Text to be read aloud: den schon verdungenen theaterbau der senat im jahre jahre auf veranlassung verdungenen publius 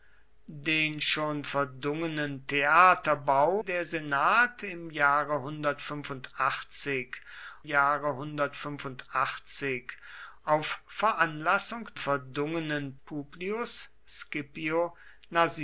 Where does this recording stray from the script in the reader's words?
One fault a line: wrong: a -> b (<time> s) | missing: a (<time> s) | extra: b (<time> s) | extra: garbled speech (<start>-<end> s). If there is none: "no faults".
no faults